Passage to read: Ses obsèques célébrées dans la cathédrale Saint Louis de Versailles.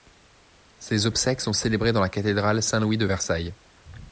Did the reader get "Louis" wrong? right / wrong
right